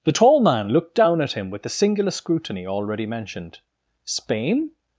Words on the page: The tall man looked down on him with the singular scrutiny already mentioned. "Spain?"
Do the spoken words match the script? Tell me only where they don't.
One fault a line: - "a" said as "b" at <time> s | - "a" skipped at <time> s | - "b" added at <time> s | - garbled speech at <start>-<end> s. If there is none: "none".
- "on" said as "at" at 1.2 s